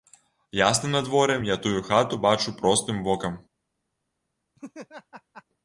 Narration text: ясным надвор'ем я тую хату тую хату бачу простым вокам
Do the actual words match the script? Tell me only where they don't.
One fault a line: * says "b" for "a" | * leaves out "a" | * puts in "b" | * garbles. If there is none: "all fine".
* leaves out "тую хату"